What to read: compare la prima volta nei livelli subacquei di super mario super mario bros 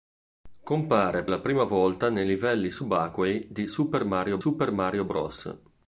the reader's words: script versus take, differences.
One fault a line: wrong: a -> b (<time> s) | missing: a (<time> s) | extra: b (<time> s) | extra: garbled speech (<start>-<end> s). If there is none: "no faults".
no faults